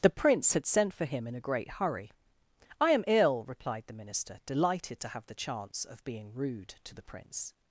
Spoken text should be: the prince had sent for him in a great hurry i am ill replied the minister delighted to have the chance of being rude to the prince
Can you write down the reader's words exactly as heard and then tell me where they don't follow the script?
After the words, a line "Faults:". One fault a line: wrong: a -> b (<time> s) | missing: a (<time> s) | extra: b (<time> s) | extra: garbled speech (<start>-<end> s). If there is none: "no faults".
the prince had sent for him in a great hurry i am ill replied the minister delighted to have the chance of being rude to the prince
Faults:
no faults